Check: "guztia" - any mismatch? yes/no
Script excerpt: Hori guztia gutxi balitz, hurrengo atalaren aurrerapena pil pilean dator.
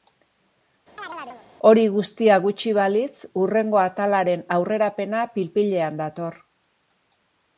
no